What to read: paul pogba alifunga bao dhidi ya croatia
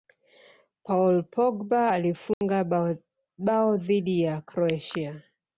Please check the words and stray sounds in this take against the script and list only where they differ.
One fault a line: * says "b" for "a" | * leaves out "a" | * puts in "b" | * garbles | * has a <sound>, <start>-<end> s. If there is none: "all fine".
* has a dropout, 2.3-2.4 s